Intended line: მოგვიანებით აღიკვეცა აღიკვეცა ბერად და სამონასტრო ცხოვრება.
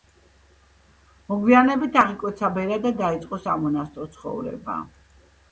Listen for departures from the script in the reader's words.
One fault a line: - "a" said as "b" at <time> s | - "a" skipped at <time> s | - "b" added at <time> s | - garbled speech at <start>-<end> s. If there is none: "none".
- "აღიკვეცა" skipped at 2.5 s
- "დაიწყო" added at 3.0 s